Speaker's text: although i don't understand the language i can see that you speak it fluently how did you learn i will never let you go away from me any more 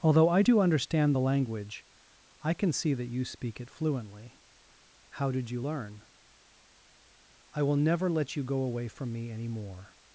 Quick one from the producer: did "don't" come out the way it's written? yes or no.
no